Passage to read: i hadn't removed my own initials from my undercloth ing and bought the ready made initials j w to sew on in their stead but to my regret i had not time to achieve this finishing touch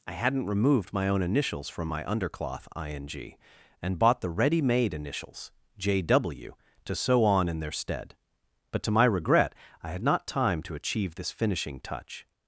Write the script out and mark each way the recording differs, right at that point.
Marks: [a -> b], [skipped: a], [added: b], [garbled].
i hadn't removed my own initials from my undercloth ing and bought the ready made initials j w to sew on in their stead but to my regret i had not time to achieve this finishing touch